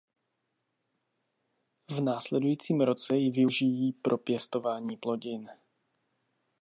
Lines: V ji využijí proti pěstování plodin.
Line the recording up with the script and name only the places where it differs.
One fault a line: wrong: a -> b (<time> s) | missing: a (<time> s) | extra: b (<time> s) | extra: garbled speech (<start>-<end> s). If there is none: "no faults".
extra: následujícím roce (2.0 s)
wrong: proti -> pro (3.9 s)